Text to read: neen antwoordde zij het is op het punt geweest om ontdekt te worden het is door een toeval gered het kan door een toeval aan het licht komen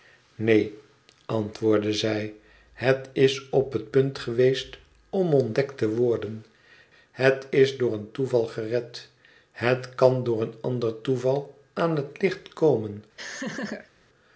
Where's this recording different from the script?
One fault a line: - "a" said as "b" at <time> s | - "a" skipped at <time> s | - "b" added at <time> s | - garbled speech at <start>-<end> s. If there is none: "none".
- "ander" added at 10.6 s